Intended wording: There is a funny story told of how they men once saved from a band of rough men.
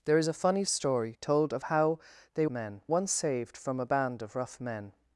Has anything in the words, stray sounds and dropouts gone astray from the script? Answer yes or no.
no